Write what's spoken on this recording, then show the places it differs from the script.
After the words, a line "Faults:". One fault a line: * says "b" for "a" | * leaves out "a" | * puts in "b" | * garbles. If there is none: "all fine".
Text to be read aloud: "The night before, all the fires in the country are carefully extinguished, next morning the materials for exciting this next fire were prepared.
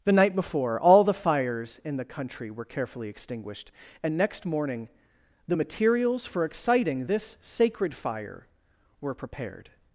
"The night before, all the fires in the country were carefully extinguished, and next morning the materials for exciting this sacred fire were prepared.
Faults:
* says "were" for "are"
* puts in "and"
* says "sacred" for "next"